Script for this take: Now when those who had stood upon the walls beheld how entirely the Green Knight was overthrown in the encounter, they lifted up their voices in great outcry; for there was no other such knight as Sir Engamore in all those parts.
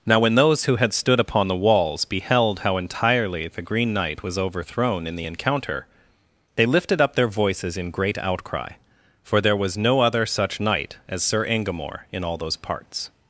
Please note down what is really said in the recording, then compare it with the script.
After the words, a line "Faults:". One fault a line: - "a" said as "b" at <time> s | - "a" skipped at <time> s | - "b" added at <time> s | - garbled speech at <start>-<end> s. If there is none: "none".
Now when those who had stood upon the walls beheld how entirely the Green Knight was overthrown in the encounter, they lifted up their voices in great outcry; for there was no other such knight as Sir Engamore in all those parts.
Faults:
none